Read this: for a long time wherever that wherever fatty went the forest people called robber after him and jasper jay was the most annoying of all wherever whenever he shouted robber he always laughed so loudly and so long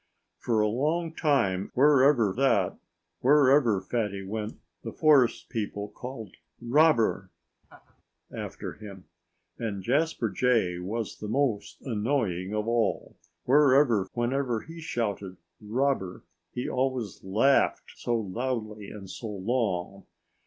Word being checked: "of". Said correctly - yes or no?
yes